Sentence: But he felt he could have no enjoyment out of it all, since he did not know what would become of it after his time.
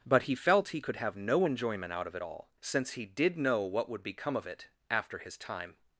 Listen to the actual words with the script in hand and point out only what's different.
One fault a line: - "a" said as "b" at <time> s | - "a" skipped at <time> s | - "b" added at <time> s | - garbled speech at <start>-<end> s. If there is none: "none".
- "not" skipped at 3.4 s